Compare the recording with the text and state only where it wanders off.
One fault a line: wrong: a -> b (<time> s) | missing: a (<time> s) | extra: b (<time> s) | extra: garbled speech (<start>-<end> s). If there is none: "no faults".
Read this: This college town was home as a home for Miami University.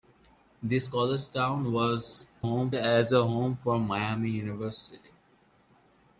no faults